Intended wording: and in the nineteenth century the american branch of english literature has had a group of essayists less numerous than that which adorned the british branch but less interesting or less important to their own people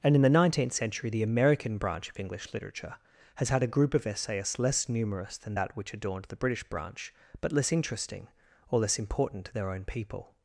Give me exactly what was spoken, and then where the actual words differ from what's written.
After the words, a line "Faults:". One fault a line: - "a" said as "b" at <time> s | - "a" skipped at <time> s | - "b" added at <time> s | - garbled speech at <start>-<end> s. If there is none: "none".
and in the nineteenth century the american branch of english literature has had a group of essayists less numerous than that which adorned the british branch but less interesting or less important to their own people
Faults:
none